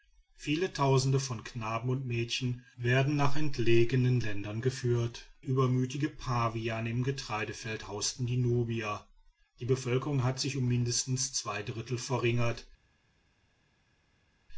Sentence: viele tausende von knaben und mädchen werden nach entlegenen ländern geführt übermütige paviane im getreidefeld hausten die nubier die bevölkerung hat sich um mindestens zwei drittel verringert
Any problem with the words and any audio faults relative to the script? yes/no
no